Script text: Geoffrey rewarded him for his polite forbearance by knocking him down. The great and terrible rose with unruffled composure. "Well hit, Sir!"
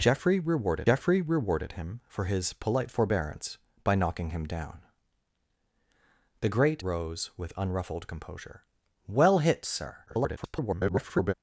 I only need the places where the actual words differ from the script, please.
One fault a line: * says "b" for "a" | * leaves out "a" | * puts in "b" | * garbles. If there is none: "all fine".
* puts in "geoffrey rewarded"
* leaves out "and terrible"
* garbles